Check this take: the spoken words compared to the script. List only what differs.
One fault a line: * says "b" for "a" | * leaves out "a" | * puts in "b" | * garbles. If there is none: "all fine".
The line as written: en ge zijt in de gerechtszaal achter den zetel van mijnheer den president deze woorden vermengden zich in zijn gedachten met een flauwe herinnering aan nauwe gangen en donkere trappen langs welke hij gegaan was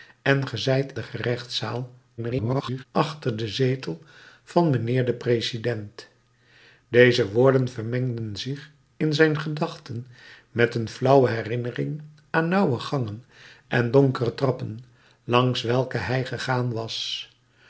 * leaves out "in"
* garbles